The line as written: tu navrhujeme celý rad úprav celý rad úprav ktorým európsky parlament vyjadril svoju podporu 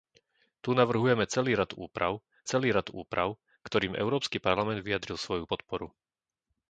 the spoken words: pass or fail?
pass